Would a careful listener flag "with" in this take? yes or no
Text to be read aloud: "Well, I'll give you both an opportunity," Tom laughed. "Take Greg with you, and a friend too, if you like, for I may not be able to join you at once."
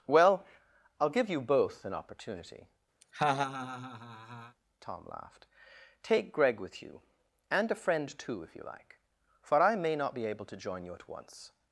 no